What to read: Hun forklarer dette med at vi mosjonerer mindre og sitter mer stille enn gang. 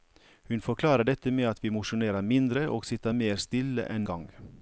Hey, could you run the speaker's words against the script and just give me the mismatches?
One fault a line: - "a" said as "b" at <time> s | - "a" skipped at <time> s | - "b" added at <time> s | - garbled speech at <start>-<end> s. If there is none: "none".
none